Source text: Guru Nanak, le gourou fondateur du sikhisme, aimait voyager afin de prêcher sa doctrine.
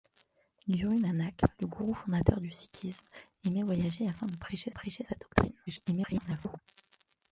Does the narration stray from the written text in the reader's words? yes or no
yes